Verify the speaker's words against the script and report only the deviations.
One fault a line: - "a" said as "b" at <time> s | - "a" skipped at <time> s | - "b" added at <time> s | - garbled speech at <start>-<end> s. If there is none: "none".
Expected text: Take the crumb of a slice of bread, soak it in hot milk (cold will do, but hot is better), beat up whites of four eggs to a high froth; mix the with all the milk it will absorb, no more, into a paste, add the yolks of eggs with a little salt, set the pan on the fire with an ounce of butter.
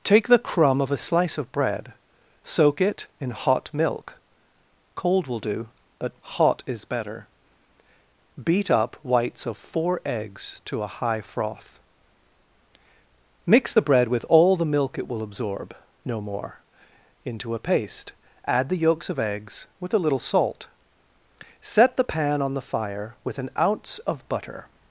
- "bread" added at 13.8 s